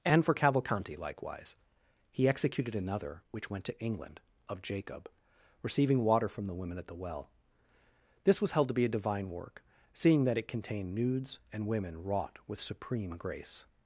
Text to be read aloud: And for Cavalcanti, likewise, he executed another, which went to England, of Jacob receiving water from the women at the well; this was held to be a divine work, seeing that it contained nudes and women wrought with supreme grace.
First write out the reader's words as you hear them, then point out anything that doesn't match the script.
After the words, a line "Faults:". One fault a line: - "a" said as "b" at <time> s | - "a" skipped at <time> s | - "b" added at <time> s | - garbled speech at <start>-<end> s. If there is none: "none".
And for Cavalcanti, likewise, he executed another, which went to England, of Jacob receiving water from the women at the well; this was held to be a divine work, seeing that it contained nudes and women wrought with supreme grace.
Faults:
none